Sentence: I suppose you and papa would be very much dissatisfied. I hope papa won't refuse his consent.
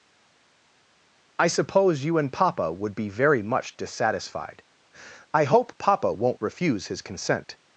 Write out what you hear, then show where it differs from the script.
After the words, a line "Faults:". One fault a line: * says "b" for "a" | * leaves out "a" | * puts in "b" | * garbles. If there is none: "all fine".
I suppose you and papa would be very much dissatisfied. I hope papa won't refuse his consent.
Faults:
all fine